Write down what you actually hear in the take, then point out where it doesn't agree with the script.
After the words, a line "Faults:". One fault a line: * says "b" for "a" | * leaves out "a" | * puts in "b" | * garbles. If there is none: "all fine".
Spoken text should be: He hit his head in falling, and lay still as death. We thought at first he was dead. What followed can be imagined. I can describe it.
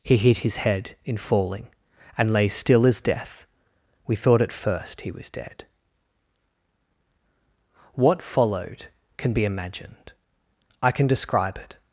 He hit his head in falling, and lay still as death. We thought at first he was dead. What followed can be imagined. I can describe it.
Faults:
all fine